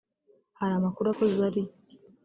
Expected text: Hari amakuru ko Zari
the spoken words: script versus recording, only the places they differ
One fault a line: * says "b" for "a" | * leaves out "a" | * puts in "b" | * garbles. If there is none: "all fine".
all fine